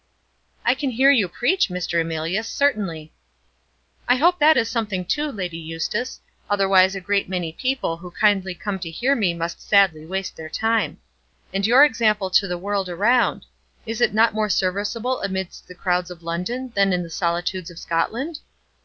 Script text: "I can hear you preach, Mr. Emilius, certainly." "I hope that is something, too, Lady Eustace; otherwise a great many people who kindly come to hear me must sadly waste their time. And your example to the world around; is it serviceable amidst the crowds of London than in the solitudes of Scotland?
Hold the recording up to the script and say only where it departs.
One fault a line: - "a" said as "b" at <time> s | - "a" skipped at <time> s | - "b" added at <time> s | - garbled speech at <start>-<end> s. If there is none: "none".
- "not more" added at 14.1 s